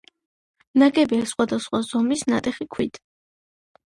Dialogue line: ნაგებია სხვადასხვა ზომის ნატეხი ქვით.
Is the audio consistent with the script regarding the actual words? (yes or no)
yes